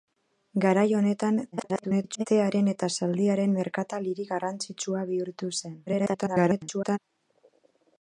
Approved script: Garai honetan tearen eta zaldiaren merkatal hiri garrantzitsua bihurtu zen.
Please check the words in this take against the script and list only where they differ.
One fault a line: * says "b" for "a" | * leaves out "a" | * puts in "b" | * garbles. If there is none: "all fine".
* garbles
* garbles